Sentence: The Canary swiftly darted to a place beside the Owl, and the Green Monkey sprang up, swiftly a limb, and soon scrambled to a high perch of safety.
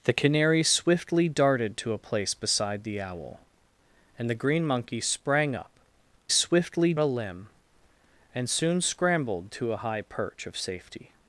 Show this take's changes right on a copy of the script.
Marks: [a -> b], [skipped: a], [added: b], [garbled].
The Canary swiftly darted to a place beside the Owl, and the Green Monkey sprang up, swiftly a limb, and soon scrambled to a high perch of safety.